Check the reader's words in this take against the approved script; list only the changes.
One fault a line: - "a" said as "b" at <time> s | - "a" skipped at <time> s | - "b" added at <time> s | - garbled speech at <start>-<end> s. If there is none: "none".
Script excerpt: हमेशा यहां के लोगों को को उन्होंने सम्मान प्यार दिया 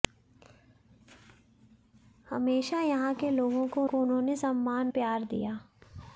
none